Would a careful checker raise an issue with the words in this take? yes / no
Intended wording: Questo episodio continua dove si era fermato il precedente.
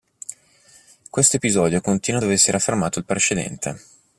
no